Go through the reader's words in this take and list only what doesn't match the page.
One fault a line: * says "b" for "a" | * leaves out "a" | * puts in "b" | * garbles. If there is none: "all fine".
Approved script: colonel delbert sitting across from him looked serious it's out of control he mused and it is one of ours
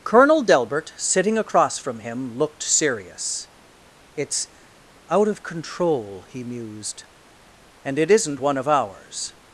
* says "isn't" for "is"